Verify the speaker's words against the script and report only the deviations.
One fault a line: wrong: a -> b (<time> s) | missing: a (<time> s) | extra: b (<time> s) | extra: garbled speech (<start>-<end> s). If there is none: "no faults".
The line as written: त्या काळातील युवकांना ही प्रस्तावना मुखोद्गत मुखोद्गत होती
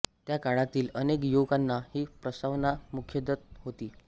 extra: अनेक (0.9 s)
missing: मुखोद्गत (3.6 s)